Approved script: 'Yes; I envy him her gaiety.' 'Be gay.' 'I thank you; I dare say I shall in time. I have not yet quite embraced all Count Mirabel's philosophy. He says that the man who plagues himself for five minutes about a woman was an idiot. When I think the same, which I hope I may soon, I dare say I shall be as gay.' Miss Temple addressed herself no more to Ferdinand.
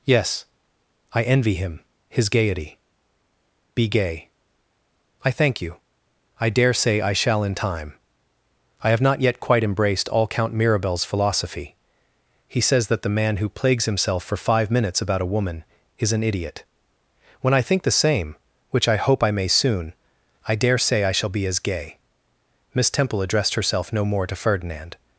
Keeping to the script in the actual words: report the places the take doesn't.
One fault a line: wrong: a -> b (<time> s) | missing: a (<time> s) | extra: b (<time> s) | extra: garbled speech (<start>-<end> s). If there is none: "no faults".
wrong: her -> his (2.1 s)
wrong: was -> is (16.0 s)